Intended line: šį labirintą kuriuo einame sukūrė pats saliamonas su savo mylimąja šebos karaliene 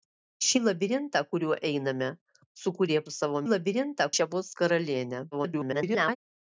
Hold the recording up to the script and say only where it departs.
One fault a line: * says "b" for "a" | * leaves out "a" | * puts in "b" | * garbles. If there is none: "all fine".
* leaves out "pats saliamonas"
* says "labirintą" for "mylimąja"
* garbles